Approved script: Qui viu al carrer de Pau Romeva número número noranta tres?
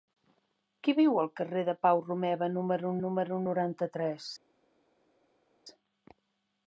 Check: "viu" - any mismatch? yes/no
no